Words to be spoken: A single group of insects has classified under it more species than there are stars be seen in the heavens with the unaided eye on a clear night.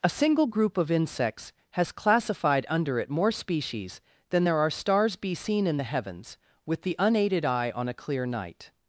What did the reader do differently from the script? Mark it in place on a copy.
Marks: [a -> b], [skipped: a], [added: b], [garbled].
A single group of insects has classified under it more species than there are stars be seen in the heavens with the unaided eye on a clear night.